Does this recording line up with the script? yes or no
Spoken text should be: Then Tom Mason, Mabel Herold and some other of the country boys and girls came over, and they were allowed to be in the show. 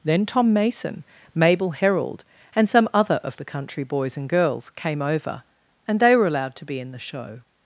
yes